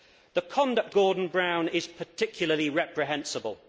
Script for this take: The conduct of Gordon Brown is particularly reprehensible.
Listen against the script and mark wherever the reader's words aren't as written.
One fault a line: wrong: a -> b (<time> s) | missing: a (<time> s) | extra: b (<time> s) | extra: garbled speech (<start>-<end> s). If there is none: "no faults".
missing: of (0.9 s)